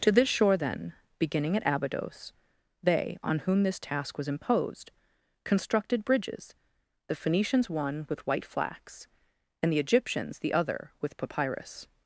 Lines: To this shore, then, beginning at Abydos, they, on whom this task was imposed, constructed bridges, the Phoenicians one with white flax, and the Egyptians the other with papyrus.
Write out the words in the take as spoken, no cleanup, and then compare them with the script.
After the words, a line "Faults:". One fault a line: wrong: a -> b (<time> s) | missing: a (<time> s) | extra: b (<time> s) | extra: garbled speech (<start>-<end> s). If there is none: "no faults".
To this shore, then, beginning at Abydos, they, on whom this task was imposed, constructed bridges, the Phoenicians one with white flax, and the Egyptians the other with papyrus.
Faults:
no faults